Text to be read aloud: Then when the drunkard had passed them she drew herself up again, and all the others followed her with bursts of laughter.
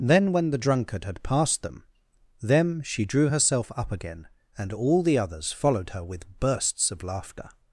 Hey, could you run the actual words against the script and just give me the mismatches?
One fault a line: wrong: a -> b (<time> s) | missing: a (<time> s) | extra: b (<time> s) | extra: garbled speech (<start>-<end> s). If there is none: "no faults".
extra: them (2.4 s)